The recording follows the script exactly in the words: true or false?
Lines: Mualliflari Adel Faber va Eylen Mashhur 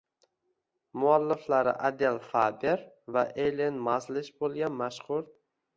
false